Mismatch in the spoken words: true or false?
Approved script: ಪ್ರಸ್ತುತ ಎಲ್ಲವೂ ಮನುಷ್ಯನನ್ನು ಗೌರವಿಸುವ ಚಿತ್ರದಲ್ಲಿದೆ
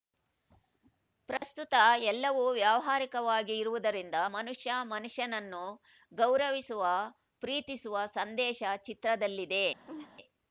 true